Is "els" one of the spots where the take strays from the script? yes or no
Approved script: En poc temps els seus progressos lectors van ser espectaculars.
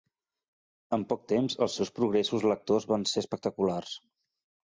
no